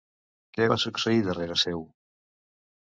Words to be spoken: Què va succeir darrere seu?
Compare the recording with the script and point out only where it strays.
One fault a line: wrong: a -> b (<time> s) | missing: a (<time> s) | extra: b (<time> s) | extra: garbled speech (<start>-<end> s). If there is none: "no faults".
no faults